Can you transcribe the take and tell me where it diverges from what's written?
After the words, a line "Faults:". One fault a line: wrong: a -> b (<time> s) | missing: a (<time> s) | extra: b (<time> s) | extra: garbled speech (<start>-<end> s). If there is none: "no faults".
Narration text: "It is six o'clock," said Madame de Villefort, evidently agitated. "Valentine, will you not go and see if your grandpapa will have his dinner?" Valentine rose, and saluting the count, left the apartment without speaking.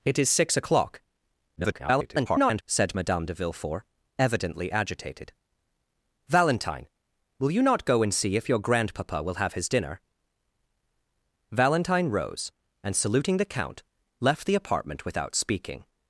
"It is six o'clock," [garbled] said Madame de Villefort, evidently agitated. "Valentine, will you not go and see if your grandpapa will have his dinner?" Valentine rose, and saluting the count, left the apartment without speaking.
Faults:
extra: garbled speech (1.6-2.6 s)